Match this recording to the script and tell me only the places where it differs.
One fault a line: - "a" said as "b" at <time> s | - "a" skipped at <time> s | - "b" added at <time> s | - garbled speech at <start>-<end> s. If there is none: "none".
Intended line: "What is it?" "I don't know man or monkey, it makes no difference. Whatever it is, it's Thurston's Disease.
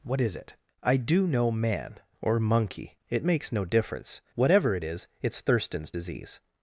- "don't" said as "do" at 1.0 s